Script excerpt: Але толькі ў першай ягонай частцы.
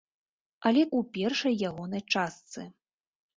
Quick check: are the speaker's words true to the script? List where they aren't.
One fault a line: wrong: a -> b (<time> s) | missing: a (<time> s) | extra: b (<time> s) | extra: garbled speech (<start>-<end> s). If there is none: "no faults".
missing: толькі (0.8 s)